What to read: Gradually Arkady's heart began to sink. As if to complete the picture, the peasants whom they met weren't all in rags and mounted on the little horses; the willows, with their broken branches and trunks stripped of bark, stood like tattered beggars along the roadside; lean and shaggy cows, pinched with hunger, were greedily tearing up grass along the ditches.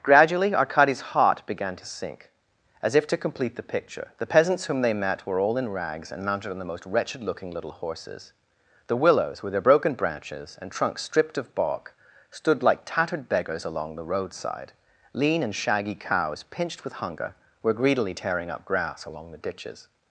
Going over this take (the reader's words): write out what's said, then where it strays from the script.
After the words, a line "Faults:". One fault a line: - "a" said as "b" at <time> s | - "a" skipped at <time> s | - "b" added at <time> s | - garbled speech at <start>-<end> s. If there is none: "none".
Gradually Arkady's heart began to sink. As if to complete the picture, the peasants whom they met were all in rags and mounted on the most wretched looking little horses; the willows, with their broken branches and trunks stripped of bark, stood like tattered beggars along the roadside; lean and shaggy cows, pinched with hunger, were greedily tearing up grass along the ditches.
Faults:
- "weren't" said as "were" at 5.3 s
- "most wretched looking" added at 6.7 s